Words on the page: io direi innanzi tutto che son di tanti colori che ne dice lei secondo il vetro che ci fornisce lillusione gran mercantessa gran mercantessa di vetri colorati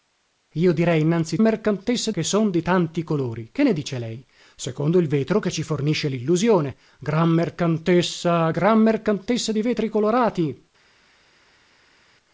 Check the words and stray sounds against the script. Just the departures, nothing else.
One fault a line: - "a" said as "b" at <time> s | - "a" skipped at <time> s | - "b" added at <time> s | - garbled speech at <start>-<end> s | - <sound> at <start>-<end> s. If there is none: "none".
- "tutto" said as "mercantessa" at 1.4 s